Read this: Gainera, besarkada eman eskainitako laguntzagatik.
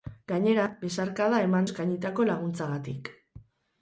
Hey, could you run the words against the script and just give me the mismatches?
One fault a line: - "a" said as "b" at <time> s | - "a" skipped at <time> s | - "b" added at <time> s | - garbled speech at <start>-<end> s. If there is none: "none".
none